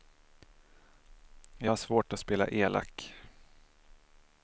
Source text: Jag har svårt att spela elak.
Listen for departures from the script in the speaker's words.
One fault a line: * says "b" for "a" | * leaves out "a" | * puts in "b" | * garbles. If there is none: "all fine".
all fine